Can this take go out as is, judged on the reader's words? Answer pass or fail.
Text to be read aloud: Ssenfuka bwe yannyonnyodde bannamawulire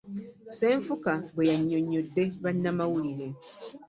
pass